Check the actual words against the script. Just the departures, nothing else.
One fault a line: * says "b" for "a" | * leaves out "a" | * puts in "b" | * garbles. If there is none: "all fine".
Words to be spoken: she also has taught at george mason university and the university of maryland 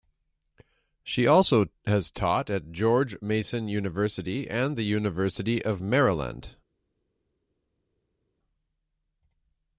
all fine